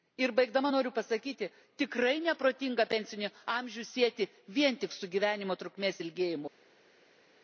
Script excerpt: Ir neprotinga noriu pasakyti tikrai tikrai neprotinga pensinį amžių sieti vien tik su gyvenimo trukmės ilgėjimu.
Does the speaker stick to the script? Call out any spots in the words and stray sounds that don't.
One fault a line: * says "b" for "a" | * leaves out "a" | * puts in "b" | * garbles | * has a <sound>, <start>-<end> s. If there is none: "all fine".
* says "baigdama" for "neprotinga"
* leaves out "tikrai"